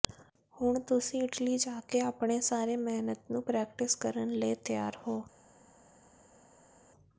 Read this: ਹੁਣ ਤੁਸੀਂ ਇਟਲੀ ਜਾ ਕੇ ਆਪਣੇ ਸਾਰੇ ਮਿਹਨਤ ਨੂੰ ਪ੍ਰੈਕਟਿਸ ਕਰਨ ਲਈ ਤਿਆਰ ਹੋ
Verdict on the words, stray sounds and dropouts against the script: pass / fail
pass